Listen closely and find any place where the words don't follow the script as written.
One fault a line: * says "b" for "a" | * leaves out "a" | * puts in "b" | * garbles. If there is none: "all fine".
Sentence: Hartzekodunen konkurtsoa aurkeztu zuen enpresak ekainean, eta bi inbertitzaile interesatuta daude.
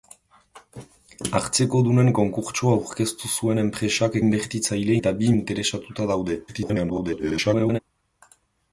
* says "inbertitzaile" for "ekainean"
* leaves out "inbertitzaile"
* garbles